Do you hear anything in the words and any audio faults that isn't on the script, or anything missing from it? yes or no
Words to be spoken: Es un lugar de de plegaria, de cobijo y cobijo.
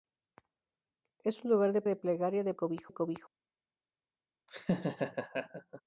yes